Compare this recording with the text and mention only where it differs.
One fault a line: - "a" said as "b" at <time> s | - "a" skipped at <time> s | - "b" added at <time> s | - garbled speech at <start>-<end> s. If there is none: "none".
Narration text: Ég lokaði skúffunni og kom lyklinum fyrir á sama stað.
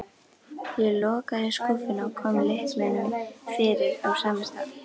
none